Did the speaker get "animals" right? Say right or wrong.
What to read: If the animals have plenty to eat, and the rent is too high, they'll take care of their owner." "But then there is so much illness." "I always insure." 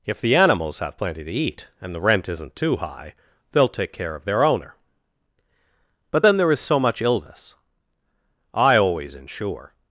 right